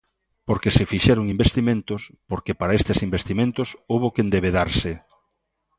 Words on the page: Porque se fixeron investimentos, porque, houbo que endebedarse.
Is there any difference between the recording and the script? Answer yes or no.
yes